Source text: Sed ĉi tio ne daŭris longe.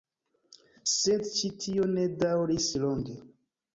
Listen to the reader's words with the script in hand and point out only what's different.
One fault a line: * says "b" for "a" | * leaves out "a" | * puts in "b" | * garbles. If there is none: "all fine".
all fine